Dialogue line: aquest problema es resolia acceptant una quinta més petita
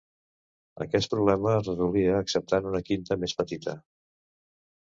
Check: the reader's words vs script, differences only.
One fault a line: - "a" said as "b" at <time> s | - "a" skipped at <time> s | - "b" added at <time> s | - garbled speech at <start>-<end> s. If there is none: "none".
none